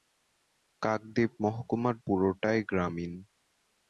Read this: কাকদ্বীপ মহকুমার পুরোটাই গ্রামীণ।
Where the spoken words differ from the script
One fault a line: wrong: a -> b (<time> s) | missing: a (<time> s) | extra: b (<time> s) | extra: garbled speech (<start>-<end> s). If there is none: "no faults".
no faults